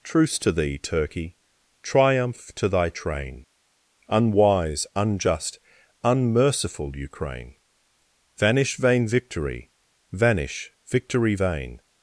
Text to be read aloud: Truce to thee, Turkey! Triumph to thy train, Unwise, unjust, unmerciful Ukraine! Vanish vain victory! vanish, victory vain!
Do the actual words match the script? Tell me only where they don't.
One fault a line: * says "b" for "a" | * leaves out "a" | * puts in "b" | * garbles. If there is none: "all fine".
all fine